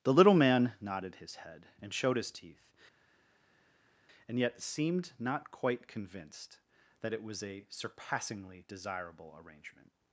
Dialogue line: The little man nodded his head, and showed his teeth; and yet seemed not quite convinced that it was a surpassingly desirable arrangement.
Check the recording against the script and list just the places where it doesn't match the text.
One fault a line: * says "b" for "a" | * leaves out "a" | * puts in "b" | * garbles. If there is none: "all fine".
all fine